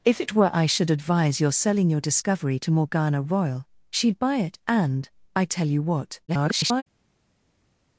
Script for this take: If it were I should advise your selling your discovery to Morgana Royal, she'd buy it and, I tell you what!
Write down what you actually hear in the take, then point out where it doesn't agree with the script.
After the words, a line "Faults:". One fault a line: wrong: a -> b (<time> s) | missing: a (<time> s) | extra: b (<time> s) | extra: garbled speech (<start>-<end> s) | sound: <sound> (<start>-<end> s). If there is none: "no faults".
If it were I should advise your selling your discovery to Morgana Royal, she'd buy it and, I tell you what! [garbled]
Faults:
extra: garbled speech (6.3-6.8 s)